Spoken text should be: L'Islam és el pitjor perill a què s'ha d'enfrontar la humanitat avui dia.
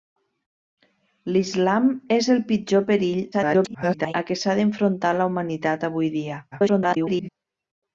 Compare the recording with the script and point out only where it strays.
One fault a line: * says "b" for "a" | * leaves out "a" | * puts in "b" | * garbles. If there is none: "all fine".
* garbles
* garbles